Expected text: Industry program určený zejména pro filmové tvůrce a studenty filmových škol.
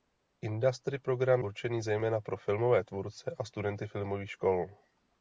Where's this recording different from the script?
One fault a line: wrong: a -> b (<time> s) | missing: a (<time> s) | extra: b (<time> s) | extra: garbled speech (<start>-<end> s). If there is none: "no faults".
no faults